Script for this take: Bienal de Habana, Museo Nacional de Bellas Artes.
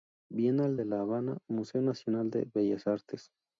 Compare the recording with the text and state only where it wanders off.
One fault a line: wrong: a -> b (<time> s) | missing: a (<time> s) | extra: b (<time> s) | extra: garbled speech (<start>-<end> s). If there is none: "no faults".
extra: La (0.8 s)